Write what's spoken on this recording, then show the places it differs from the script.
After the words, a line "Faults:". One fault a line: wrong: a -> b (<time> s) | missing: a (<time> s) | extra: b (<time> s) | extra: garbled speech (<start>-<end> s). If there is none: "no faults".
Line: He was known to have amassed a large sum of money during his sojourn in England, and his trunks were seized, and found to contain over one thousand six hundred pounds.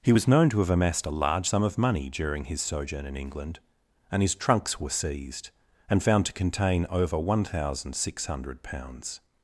He was known to have amassed a large sum of money during his sojourn in England, and his trunks were seized, and found to contain over one thousand six hundred pounds.
Faults:
no faults